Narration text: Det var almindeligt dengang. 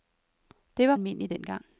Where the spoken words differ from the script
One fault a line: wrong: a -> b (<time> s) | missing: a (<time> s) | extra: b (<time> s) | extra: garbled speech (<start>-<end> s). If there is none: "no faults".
no faults